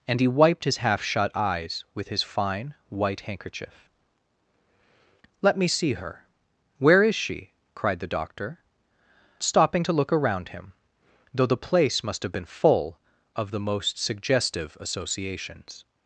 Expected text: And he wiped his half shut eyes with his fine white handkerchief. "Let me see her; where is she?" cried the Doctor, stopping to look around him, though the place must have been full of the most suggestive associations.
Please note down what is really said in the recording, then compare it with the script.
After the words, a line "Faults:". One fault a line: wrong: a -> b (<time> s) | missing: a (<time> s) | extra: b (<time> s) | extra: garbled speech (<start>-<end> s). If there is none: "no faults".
And he wiped his half shut eyes with his fine white handkerchief. "Let me see her; where is she?" cried the Doctor, stopping to look around him, though the place must have been full of the most suggestive associations.
Faults:
no faults